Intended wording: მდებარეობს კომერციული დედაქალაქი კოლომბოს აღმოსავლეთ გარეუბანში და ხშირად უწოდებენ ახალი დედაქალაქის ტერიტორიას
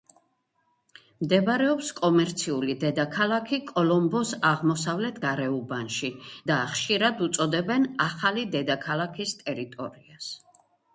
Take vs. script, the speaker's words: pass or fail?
pass